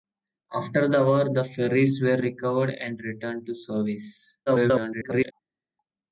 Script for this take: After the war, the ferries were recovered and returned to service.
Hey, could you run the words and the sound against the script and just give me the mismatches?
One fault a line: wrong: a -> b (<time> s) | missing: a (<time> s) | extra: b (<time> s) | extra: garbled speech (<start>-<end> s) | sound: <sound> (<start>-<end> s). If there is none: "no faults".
extra: garbled speech (4.5-5.3 s)